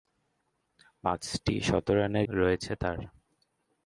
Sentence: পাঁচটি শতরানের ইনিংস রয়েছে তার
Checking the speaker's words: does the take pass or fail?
fail